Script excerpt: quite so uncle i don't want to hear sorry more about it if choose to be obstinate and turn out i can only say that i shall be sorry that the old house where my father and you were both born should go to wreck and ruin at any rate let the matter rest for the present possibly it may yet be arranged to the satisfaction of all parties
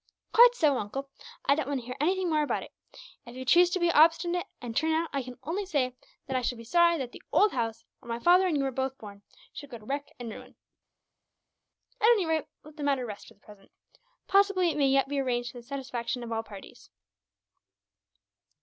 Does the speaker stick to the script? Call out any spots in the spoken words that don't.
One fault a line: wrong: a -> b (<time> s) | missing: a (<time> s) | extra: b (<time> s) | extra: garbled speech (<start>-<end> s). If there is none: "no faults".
wrong: sorry -> anything (2.0 s)
extra: you (3.4 s)